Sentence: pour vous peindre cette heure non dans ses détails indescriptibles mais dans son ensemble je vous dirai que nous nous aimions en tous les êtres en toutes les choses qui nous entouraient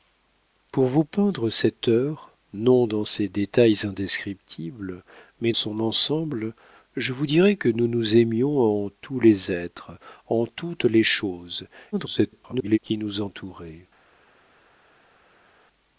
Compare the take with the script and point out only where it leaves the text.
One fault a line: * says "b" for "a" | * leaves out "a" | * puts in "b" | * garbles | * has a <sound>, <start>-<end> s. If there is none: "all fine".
* leaves out "dans"
* garbles